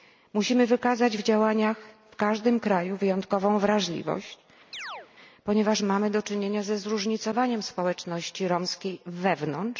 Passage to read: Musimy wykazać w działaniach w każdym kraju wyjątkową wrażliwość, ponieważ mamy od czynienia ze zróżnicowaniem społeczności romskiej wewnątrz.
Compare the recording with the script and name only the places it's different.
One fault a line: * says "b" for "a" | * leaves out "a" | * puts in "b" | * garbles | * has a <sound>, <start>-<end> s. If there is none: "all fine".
* has a chirp, 4.7-5.1 s
* says "do" for "od"